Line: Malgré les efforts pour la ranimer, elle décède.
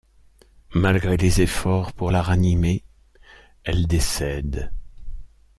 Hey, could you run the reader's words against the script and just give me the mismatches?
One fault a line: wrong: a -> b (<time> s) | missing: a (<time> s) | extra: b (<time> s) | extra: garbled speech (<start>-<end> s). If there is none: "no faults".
no faults